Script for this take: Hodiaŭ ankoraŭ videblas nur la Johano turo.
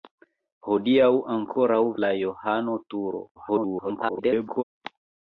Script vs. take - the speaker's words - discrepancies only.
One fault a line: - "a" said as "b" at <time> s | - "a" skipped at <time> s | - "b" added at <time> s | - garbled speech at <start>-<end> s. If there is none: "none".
- "videblas nur" skipped at 1.8 s
- garbled speech at 3.4-4.6 s